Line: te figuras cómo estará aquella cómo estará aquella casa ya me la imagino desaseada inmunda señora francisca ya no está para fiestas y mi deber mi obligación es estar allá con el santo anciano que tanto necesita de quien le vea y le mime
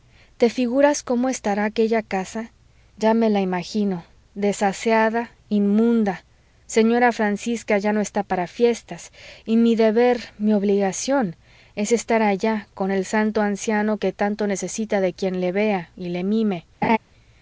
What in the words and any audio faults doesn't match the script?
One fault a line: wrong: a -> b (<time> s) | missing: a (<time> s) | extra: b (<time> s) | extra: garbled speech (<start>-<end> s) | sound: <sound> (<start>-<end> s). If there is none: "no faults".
missing: cómo estará aquella (2.0 s)
sound: laugh (16.8-17.0 s)